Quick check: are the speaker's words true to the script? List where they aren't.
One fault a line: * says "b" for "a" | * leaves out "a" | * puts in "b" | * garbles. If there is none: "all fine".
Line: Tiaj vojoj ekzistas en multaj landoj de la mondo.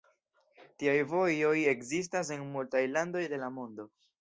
all fine